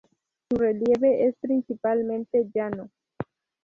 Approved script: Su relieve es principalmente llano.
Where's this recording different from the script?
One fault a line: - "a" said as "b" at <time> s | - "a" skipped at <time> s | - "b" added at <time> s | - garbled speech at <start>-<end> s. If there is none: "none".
none